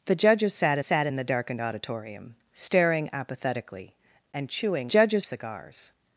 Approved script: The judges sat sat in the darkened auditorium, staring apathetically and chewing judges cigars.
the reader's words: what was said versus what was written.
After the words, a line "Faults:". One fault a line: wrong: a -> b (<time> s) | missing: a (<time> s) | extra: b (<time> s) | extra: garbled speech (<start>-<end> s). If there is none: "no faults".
The judges sat sat in the darkened auditorium, staring apathetically and chewing judges cigars.
Faults:
no faults